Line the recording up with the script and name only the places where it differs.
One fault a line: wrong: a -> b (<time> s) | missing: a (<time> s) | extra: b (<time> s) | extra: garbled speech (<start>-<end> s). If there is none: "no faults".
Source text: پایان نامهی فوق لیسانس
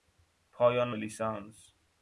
missing: نامهی فوق (0.9 s)